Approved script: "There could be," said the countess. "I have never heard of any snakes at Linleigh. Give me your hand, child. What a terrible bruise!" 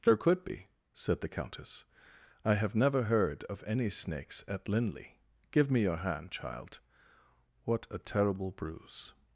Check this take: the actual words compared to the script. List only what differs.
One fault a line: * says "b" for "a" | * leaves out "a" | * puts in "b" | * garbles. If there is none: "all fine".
all fine